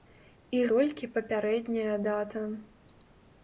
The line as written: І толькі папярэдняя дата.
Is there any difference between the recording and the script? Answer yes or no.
no